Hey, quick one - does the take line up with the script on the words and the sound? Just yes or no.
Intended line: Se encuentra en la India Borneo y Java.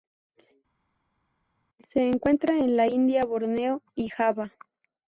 yes